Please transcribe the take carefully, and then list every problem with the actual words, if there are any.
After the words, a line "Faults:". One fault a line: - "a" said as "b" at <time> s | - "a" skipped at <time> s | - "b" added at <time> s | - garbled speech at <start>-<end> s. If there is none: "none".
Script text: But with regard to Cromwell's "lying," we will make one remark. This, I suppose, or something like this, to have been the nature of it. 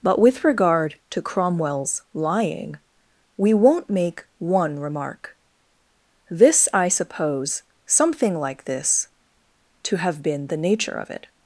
But with regard to Cromwell's "lying," we won't make one remark. This, I suppose, something like this, to have been the nature of it.
Faults:
- "will" said as "won't" at 3.5 s
- "or" skipped at 7.6 s